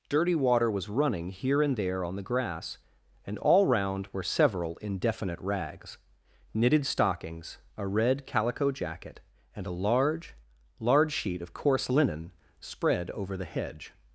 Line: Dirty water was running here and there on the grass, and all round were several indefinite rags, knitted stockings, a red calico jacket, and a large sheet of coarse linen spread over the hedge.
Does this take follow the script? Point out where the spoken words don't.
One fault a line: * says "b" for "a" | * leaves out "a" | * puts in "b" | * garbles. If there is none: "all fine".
* puts in "large"